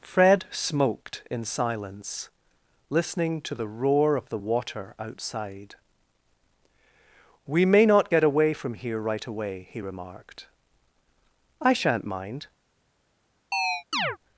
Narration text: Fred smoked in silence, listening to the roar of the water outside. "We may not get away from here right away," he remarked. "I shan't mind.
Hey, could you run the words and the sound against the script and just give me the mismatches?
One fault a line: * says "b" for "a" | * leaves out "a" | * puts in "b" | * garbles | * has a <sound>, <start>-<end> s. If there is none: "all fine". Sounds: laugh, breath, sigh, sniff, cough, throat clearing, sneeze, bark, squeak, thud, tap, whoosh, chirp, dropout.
* has a chirp, 13.5-14.2 s